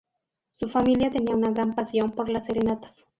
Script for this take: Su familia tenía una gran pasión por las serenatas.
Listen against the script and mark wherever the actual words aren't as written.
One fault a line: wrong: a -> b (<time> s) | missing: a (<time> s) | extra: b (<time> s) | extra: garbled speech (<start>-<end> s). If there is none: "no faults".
no faults